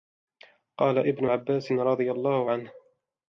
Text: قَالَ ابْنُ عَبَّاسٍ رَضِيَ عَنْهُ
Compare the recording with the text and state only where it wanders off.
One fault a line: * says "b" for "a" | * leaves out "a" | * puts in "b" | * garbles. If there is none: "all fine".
* puts in "اللَّهُ"